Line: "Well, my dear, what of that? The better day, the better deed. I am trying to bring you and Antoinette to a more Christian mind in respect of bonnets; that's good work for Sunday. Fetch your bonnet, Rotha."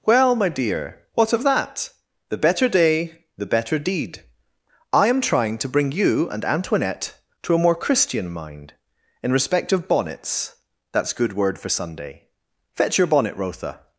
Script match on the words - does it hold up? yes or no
no